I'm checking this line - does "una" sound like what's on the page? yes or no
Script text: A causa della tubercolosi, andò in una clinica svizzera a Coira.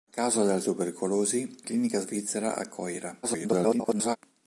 no